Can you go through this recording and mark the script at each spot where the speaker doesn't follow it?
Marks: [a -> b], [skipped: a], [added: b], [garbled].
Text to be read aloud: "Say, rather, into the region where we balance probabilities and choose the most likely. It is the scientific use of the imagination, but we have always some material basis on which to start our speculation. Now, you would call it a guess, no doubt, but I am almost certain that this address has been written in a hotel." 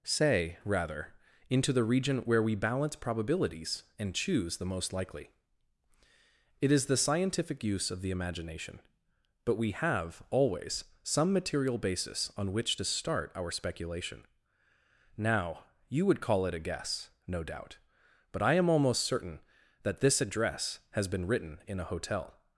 "Say, rather, into the region where we balance probabilities and choose the most likely. It is the scientific use of the imagination, but we have always some material basis on which to start our speculation. Now, you would call it a guess, no doubt, but I am almost certain that this address has been written in a hotel."